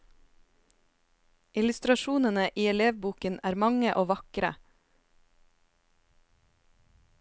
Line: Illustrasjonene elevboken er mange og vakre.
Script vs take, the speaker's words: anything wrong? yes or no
yes